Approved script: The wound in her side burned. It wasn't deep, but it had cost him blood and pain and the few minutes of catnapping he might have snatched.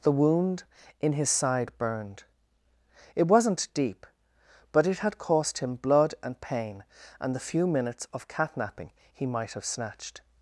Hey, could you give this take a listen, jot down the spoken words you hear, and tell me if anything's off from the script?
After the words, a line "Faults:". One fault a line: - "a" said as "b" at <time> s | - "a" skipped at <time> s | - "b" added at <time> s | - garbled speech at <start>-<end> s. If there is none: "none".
The wound in his side burned. It wasn't deep, but it had cost him blood and pain and the few minutes of catnapping he might have snatched.
Faults:
- "her" said as "his" at 1.1 s